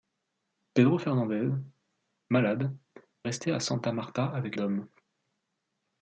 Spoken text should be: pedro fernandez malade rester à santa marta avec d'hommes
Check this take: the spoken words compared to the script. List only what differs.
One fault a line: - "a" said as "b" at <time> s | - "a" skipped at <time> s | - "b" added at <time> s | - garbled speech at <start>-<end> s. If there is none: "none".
none